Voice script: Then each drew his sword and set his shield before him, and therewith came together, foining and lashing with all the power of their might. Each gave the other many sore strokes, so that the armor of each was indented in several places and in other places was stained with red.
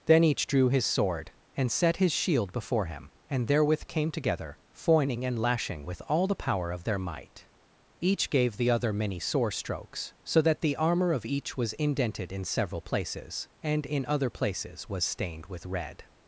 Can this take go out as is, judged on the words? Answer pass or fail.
pass